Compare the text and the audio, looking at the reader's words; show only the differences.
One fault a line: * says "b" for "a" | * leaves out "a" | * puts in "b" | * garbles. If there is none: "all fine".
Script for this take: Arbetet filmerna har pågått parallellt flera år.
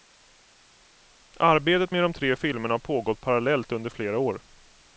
* puts in "med de tre"
* puts in "under"